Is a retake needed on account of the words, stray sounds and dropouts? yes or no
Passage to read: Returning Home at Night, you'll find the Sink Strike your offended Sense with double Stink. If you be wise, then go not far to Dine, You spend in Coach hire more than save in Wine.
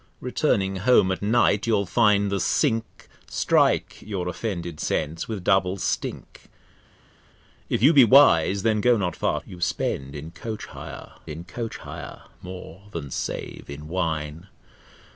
yes